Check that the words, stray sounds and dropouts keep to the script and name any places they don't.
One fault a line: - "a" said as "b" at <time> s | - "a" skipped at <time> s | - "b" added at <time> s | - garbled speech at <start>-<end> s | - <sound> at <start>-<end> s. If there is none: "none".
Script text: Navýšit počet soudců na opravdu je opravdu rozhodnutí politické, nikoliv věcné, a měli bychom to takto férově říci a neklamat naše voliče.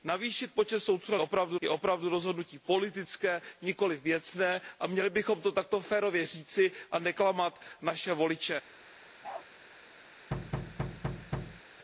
- bark at 9.2-9.5 s
- thud at 10.3-11.6 s